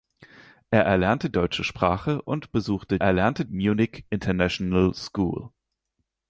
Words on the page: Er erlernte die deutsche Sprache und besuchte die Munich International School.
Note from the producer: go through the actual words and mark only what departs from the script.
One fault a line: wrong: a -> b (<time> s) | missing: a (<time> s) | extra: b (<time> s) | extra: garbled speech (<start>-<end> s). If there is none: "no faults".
missing: die (1.3 s)
wrong: die -> erlernte (3.0 s)